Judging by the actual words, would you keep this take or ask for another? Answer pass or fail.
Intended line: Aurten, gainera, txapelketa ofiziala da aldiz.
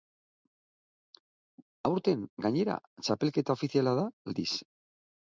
pass